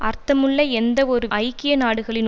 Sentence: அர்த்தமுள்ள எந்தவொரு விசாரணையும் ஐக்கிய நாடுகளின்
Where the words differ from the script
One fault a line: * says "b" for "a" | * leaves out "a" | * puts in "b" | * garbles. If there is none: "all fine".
* leaves out "விசாரணையும்"